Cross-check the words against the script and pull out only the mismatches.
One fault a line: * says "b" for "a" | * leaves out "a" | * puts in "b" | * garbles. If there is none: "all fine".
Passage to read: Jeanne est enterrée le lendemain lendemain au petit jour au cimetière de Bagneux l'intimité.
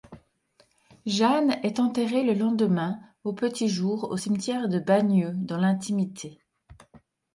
* leaves out "lendemain"
* puts in "dans"